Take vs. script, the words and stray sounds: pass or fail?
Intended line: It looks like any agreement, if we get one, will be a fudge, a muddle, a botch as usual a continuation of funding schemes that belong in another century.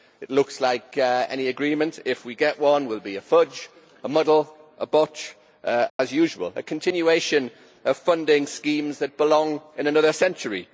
fail